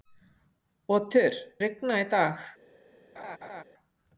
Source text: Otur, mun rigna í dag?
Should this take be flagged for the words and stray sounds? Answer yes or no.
yes